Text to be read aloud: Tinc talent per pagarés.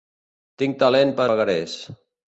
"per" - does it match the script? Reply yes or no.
yes